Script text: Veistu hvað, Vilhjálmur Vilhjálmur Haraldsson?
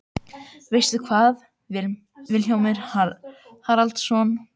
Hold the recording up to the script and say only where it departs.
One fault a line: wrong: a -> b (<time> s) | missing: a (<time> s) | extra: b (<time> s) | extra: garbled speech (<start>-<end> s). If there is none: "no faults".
missing: Vilhjálmur (2.8 s)